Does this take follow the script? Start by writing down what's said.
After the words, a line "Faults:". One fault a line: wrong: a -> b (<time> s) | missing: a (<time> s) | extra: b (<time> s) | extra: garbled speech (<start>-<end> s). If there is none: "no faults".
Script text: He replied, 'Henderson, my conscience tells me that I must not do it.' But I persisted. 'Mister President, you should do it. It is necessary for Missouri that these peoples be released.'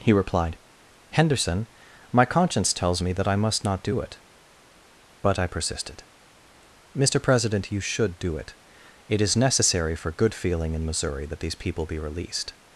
He replied, 'Henderson, my conscience tells me that I must not do it.' But I persisted. 'Mister President, you should do it. It is necessary for good feeling in Missouri that these people be released.'
Faults:
extra: good feeling in (10.1 s)
wrong: peoples -> people (11.5 s)